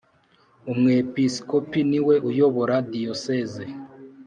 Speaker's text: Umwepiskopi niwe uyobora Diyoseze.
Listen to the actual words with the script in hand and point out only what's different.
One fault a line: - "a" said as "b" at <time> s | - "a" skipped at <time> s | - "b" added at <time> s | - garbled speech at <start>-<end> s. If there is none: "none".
none